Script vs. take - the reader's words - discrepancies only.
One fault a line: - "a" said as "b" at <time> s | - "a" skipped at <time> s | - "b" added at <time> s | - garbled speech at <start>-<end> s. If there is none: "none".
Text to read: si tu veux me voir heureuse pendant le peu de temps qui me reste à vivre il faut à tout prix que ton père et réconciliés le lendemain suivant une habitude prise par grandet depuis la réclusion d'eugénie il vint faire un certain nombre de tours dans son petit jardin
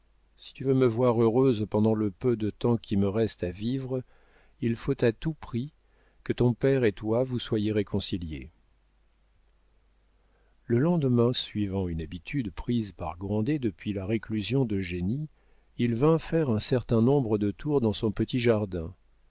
- "toi vous soyez" added at 6.9 s